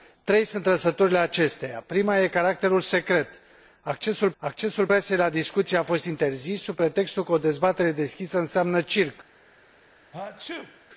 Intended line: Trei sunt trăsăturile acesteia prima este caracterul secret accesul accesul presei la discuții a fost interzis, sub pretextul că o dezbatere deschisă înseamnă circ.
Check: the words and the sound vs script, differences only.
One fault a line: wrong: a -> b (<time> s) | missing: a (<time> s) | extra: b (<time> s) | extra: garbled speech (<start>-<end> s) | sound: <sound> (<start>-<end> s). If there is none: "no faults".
sound: sneeze (10.1-10.9 s)